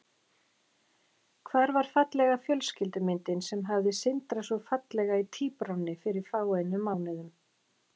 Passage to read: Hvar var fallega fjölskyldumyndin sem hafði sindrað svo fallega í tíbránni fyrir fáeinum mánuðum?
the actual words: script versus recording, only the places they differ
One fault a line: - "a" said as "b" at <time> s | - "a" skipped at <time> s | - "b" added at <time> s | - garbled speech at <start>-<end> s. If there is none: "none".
none